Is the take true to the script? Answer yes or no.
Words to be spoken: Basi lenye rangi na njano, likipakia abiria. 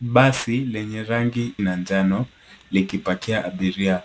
yes